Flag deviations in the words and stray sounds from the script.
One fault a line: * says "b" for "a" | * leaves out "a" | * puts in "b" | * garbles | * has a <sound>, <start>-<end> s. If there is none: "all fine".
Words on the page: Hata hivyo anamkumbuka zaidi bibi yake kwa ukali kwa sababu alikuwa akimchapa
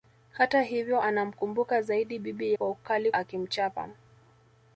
* leaves out "yake"
* leaves out "kwa sababu alikuwa"